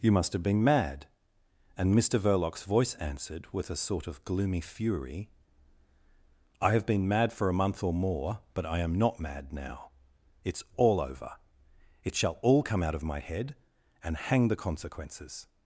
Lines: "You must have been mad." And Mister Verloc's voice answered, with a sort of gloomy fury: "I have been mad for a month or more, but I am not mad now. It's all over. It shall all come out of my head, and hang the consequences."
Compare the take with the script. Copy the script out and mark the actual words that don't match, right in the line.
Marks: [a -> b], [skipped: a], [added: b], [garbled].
"You must have been mad." And Mister Verloc's voice answered, with a sort of gloomy fury: "I have been mad for a month or more, but I am not mad now. It's all over. It shall all come out of my head, and hang the consequences."